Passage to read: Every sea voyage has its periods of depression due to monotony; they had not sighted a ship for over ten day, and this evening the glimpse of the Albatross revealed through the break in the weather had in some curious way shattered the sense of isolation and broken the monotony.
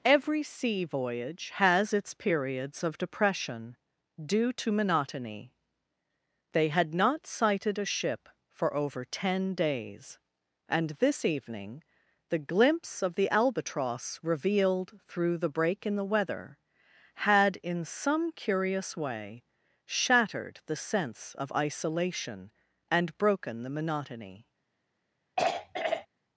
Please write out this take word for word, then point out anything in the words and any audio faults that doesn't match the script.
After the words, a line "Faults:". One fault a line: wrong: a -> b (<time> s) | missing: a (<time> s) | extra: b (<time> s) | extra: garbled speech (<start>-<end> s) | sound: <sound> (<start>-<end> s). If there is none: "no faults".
Every sea voyage has its periods of depression due to monotony; they had not sighted a ship for over ten days, and this evening the glimpse of the Albatross revealed through the break in the weather had in some curious way shattered the sense of isolation and broken the monotony.
Faults:
wrong: day -> days (9.5 s)
sound: throat clearing (25.4-26.1 s)